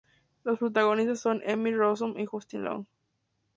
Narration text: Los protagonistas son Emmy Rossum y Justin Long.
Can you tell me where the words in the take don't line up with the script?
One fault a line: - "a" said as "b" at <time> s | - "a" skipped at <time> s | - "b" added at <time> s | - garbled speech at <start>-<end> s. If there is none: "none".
none